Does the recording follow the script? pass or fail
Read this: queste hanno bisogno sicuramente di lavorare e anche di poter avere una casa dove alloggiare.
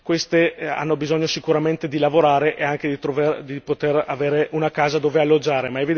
pass